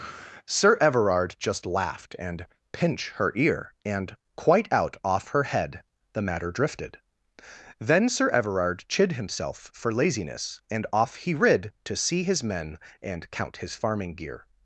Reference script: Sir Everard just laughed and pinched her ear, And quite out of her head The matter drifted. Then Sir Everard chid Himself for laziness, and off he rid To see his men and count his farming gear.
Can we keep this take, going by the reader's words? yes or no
no